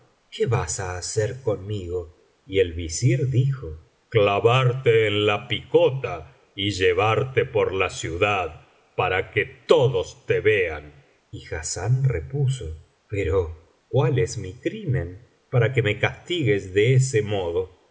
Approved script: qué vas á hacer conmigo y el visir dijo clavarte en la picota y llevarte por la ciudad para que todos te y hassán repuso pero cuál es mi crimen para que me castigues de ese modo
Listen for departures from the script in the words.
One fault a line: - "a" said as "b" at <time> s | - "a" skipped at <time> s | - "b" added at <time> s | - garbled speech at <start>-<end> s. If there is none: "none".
- "vean" added at 10.4 s